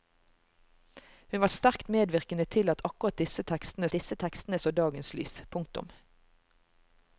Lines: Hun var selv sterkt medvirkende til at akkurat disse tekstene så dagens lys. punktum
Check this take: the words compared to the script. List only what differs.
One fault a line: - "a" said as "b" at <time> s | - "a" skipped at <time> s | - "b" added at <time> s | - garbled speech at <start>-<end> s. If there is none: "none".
- "selv" skipped at 1.5 s
- "disse tekstene" added at 3.9 s